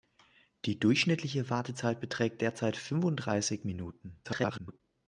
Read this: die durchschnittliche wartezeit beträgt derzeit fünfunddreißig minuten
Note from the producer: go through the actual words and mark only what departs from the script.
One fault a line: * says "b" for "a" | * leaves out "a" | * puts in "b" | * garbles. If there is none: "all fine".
* garbles